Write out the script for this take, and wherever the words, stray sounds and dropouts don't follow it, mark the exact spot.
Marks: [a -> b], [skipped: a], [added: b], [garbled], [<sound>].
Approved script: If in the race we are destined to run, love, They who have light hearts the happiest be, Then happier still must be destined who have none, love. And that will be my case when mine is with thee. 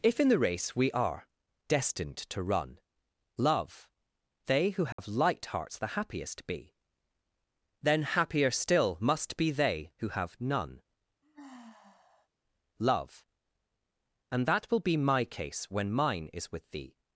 If in the race we are destined to run, love, They who have [dropout] light hearts the happiest be, Then happier still must be [destined -> they] who have none, [sigh] love. And that will be my case when mine is with thee.